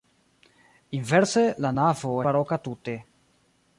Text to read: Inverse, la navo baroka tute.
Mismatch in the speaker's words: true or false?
false